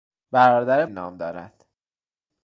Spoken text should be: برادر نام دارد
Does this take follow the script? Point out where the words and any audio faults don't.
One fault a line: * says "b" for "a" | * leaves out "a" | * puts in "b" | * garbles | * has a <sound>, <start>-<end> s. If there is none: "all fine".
all fine